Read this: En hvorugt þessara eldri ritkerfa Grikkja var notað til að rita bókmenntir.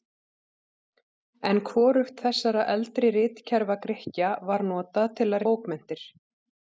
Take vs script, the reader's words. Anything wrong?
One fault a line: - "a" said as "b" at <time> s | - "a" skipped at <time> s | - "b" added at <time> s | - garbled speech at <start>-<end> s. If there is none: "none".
- "rita" skipped at 5.5 s